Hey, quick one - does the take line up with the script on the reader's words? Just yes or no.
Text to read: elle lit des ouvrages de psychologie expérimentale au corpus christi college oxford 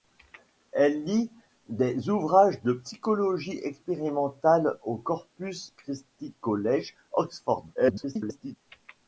no